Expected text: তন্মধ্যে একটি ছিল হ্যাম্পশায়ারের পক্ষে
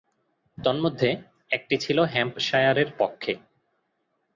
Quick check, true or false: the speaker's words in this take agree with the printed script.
true